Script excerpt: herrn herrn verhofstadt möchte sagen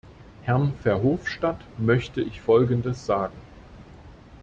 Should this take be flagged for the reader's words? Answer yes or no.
yes